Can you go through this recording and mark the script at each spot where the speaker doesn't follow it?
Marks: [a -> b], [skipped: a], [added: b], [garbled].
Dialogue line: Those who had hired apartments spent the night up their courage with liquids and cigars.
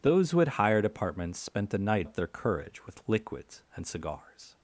Those who had hired apartments spent the night up their courage with liquids and cigars.